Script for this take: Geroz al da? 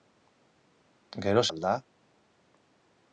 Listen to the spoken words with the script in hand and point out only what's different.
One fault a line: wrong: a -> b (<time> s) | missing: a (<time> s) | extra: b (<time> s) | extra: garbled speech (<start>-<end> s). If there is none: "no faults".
no faults